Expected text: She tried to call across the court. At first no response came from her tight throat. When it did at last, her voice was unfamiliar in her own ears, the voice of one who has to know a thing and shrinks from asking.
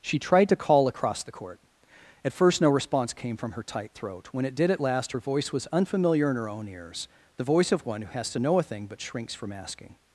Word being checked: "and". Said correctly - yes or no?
no